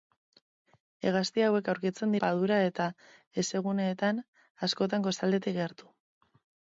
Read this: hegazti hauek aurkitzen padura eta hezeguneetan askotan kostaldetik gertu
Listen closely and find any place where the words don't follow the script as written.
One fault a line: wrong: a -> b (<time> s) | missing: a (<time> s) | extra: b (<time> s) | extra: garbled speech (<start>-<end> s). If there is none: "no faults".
no faults